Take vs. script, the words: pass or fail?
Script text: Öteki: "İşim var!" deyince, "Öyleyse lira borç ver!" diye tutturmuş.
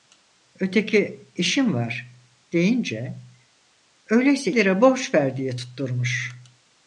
pass